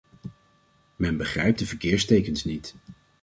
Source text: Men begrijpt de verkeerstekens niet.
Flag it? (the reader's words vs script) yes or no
no